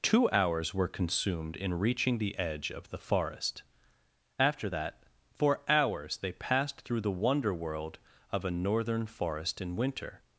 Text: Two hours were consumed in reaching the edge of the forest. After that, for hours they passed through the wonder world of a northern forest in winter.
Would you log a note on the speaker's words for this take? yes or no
no